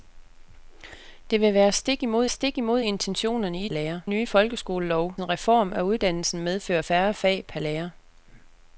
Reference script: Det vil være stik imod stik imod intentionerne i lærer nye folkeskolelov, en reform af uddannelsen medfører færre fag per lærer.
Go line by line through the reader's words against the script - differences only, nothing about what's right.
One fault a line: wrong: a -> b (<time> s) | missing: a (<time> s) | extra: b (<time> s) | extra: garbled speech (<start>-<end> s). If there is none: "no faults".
no faults